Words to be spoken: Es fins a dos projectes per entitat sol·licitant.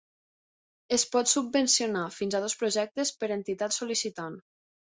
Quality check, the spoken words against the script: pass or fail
fail